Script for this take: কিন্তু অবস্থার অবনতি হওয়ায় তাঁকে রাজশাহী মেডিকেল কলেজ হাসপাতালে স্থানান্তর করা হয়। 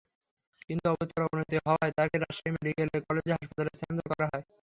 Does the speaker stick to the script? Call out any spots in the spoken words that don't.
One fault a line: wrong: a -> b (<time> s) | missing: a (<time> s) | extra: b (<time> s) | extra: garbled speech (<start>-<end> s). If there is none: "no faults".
no faults